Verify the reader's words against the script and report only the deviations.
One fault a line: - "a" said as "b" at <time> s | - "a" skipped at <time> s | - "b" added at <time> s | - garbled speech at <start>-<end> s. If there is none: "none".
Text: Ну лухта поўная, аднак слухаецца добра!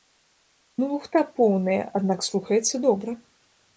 none